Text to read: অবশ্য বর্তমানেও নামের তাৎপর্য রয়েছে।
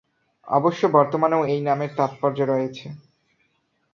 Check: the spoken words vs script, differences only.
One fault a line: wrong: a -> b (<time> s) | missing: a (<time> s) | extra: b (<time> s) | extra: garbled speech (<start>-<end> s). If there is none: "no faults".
extra: এই (1.4 s)